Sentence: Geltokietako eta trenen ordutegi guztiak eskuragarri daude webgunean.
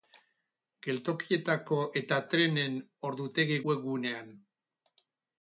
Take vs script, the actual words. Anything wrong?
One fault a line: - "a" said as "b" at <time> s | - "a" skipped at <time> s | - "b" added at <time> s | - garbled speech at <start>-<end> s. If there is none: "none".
- "guztiak eskuragarri daude" skipped at 3.6 s